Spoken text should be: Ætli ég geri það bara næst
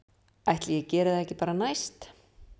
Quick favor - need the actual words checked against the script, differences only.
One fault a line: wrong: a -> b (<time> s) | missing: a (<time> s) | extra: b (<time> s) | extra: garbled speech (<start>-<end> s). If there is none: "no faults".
extra: ekki (1.3 s)